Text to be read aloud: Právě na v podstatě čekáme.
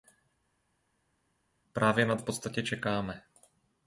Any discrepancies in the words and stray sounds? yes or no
no